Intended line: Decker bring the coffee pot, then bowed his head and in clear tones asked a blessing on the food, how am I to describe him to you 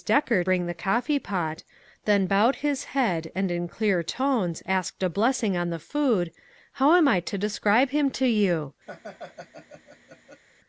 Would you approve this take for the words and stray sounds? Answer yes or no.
no